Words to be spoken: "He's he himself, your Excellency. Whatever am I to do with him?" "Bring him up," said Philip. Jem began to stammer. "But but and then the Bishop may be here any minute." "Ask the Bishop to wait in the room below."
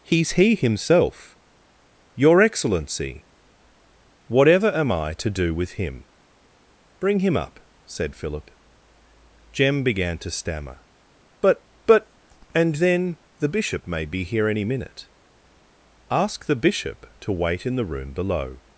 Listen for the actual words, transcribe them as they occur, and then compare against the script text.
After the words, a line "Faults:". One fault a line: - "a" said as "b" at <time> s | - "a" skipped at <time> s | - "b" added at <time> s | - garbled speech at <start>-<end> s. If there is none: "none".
"He's he himself, your Excellency. Whatever am I to do with him?" "Bring him up," said Philip. Jem began to stammer. "But but and then the Bishop may be here any minute." "Ask the Bishop to wait in the room below."
Faults:
none